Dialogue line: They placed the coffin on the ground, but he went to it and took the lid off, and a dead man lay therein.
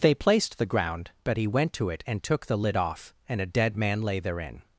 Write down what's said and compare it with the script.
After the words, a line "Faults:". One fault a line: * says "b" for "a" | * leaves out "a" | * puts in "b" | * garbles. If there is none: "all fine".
They placed the ground, but he went to it and took the lid off, and a dead man lay therein.
Faults:
* leaves out "coffin on the"